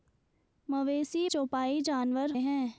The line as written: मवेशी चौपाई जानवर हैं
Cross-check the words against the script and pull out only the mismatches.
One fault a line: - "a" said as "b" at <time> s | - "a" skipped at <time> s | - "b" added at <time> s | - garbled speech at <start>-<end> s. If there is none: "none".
none